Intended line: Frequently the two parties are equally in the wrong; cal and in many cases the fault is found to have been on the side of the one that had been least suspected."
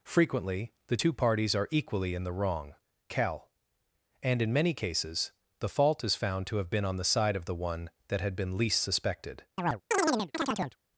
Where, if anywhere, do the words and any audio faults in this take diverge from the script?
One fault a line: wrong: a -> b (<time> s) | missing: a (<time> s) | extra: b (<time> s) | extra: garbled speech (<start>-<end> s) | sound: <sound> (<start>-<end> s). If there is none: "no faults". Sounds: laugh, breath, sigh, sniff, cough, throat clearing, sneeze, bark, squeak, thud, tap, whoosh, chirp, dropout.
sound: chirp (9.6-10.8 s)